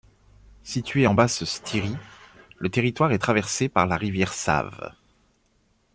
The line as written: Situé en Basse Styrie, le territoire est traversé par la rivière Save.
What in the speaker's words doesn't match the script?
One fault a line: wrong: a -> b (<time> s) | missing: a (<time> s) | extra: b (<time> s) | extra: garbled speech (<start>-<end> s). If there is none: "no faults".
no faults